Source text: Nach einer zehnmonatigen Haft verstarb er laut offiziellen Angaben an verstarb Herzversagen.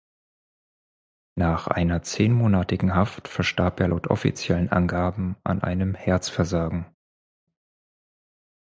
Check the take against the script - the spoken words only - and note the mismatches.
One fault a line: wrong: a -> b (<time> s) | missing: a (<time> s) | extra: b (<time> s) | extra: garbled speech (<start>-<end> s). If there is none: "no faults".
wrong: verstarb -> einem (5.6 s)